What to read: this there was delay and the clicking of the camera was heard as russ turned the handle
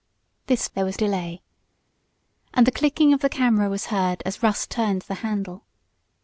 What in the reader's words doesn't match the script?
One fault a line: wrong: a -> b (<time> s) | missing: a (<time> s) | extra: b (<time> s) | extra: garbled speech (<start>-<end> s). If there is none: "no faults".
no faults